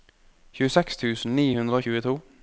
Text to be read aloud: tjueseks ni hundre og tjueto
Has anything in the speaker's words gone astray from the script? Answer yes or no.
yes